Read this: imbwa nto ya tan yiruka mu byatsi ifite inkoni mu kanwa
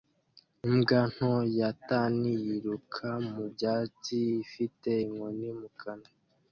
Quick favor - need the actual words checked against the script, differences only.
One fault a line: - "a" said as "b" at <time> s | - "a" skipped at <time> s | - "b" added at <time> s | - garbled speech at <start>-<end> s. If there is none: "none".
none